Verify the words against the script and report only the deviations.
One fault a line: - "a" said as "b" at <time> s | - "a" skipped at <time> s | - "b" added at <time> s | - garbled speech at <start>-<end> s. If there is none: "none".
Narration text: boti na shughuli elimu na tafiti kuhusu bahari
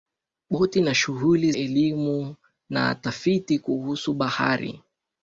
none